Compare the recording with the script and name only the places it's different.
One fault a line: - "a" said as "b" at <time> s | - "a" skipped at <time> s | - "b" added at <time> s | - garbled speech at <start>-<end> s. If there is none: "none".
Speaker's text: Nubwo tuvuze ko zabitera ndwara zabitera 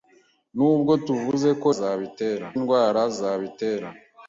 none